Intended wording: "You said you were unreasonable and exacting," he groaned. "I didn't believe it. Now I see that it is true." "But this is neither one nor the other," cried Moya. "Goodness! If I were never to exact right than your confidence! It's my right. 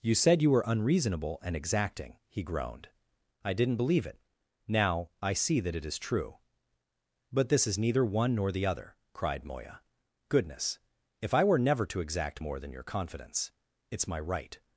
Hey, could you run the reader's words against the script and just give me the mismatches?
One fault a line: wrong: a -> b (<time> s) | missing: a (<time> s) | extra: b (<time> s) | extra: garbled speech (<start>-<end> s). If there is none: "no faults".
wrong: right -> more (12.4 s)